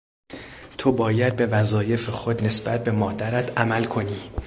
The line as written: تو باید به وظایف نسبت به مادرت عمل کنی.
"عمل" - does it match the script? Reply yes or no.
yes